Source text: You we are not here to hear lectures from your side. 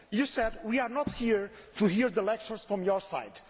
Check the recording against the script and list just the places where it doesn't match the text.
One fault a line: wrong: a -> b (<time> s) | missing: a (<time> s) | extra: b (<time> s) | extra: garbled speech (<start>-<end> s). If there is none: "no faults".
extra: said (0.2 s)